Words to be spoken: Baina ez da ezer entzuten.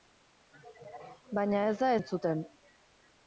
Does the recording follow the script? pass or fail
fail